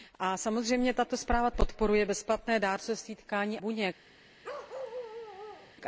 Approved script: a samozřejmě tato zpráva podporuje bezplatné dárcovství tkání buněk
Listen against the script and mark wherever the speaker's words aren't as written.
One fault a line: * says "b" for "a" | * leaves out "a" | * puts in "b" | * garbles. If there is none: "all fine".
all fine